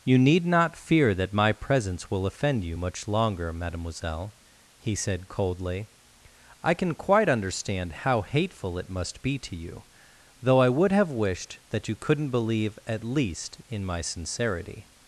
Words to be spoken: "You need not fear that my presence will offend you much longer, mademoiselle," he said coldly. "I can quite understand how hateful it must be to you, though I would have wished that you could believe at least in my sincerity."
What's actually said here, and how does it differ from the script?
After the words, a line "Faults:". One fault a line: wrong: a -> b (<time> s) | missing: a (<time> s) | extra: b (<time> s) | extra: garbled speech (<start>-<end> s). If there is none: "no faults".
"You need not fear that my presence will offend you much longer, mademoiselle," he said coldly. "I can quite understand how hateful it must be to you, though I would have wished that you couldn't believe at least in my sincerity."
Faults:
wrong: could -> couldn't (12.0 s)